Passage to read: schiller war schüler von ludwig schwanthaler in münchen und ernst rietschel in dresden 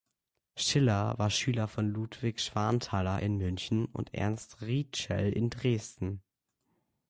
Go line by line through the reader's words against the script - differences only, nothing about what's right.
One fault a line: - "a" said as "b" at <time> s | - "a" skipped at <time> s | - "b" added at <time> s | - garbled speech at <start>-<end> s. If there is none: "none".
none